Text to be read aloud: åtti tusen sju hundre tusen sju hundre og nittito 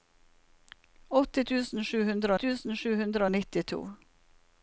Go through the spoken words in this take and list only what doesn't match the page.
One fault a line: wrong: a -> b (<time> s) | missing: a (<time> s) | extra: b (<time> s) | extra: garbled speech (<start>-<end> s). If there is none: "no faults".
no faults